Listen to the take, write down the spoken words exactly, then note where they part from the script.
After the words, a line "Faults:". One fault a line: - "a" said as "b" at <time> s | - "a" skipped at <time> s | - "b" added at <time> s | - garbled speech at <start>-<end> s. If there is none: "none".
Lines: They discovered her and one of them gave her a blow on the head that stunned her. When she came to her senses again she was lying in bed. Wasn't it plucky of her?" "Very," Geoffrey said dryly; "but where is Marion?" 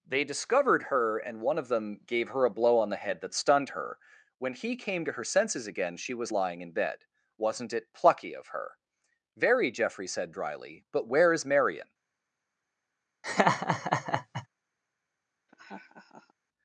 They discovered her and one of them gave her a blow on the head that stunned her. When he came to her senses again she was lying in bed. Wasn't it plucky of her?" "Very," Geoffrey said dryly; "but where is Marion?"
Faults:
- "she" said as "he" at 4.5 s